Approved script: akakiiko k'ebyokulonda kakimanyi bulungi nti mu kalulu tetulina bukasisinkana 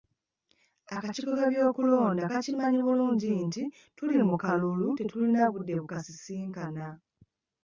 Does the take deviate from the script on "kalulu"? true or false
false